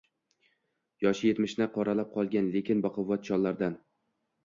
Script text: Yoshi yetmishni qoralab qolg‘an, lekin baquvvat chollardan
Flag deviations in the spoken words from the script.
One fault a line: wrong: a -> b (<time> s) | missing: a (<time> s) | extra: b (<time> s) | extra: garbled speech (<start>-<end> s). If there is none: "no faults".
no faults